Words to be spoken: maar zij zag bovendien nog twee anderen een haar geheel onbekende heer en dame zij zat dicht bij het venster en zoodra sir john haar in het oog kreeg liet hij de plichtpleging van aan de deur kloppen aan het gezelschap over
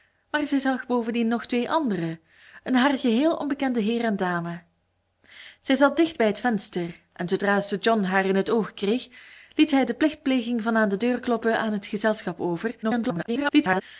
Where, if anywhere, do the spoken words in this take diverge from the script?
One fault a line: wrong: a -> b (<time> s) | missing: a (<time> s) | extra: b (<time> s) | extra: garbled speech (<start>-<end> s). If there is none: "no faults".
extra: garbled speech (12.8-13.8 s)